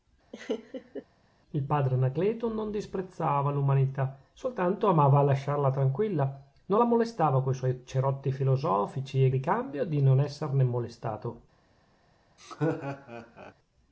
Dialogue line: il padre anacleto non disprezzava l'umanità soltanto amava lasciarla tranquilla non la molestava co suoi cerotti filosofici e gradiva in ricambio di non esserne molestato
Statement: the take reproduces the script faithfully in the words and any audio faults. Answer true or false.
false